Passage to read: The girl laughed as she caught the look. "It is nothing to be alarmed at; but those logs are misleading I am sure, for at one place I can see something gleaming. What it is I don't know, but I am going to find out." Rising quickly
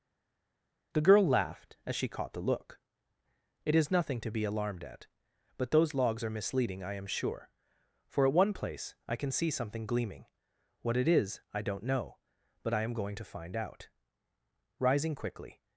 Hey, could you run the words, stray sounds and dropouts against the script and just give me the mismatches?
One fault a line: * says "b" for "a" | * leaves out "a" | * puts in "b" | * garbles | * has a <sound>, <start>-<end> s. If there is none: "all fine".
all fine